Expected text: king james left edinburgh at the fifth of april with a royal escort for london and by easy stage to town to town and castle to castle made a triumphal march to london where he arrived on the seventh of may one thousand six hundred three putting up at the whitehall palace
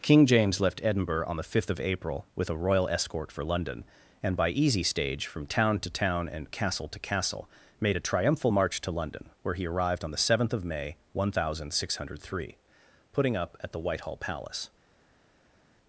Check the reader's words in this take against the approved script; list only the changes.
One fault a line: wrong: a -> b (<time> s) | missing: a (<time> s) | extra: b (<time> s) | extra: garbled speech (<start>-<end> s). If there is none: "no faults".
wrong: at -> on (1.3 s)
wrong: to -> from (5.3 s)